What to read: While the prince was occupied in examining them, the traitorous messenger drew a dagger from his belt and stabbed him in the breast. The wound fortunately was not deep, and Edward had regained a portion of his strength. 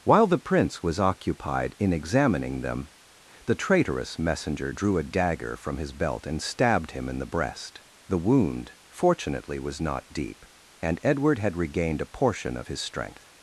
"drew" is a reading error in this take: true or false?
false